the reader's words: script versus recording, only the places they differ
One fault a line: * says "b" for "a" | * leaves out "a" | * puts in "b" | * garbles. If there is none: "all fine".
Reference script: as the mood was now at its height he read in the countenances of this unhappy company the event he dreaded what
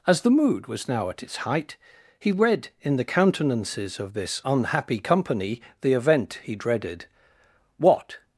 all fine